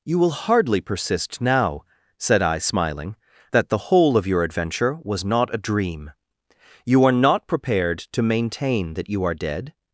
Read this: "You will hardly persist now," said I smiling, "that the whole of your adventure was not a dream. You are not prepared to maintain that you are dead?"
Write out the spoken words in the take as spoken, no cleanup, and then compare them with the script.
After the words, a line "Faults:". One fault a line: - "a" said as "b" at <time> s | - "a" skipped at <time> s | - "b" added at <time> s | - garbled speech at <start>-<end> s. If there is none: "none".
"You will hardly persist now," said I smiling, "that the whole of your adventure was not a dream. You are not prepared to maintain that you are dead?"
Faults:
none